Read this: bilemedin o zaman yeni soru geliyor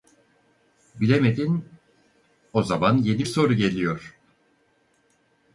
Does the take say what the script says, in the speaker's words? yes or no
yes